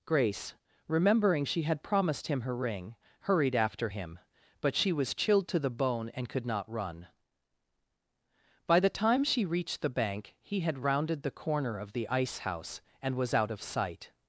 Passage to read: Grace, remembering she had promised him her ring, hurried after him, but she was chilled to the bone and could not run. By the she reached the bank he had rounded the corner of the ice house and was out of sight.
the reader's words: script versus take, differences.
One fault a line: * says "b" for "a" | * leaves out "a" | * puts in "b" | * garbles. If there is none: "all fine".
* puts in "time"